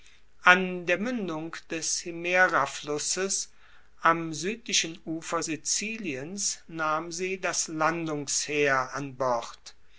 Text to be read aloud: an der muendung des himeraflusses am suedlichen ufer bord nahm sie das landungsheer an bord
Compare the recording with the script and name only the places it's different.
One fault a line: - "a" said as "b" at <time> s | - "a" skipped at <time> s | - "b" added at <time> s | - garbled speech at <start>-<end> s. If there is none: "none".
- "bord" said as "siziliens" at 5.4 s